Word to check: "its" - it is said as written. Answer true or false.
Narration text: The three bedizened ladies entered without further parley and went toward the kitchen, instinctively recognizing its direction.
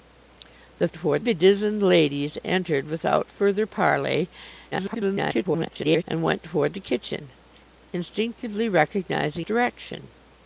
false